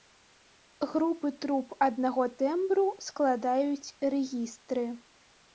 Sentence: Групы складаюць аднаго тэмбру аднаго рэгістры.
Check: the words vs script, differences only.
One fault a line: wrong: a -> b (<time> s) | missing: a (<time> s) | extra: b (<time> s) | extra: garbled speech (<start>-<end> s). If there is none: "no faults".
wrong: складаюць -> труб (1.4 s)
wrong: аднаго -> складаюць (3.1 s)